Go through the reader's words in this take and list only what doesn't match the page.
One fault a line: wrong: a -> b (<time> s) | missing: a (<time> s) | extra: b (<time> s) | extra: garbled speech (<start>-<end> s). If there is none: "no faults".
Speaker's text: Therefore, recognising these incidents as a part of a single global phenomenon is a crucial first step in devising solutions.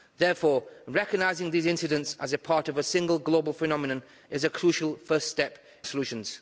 missing: in devising (5.6 s)